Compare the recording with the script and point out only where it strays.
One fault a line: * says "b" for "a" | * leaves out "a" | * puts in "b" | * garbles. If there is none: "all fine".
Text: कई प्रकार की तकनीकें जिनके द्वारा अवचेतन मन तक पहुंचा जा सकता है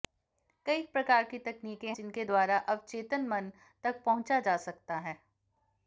all fine